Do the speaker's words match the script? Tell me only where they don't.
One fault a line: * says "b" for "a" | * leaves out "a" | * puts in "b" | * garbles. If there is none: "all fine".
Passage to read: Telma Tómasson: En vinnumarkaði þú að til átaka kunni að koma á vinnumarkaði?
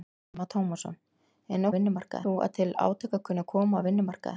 all fine